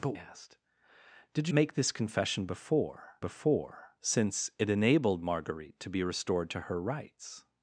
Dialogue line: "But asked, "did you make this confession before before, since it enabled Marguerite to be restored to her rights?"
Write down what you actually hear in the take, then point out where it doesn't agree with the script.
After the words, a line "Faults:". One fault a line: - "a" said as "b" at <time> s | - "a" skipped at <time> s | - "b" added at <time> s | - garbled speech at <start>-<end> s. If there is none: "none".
"But asked, "did you make this confession before before, since it enabled Marguerite to be restored to her rights?"
Faults:
none